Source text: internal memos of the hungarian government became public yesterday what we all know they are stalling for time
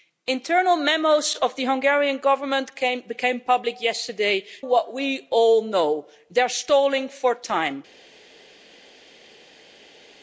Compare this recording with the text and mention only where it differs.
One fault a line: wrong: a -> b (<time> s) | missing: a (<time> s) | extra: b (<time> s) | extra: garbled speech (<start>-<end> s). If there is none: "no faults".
no faults